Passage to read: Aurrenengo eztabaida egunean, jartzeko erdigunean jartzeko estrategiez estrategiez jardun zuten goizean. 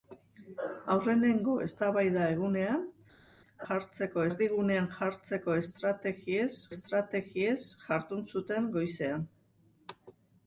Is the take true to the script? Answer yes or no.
yes